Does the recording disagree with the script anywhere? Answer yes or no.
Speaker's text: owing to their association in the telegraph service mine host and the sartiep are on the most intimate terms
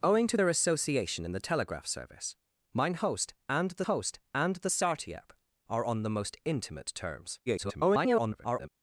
yes